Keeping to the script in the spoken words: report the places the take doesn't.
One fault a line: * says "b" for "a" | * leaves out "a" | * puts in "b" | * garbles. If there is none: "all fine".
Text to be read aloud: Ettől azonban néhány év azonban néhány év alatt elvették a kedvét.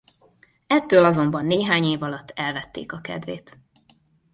* leaves out "azonban néhány év"